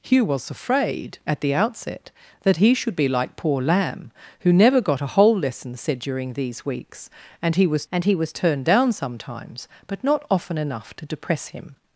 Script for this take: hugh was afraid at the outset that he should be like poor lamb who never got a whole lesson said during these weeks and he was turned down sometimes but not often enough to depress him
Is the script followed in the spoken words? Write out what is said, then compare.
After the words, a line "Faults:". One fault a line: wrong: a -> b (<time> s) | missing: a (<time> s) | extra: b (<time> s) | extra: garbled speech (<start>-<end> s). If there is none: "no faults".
hugh was afraid at the outset that he should be like poor lamb who never got a whole lesson said during these weeks and he was and he was turned down sometimes but not often enough to depress him
Faults:
extra: and he was (7.9 s)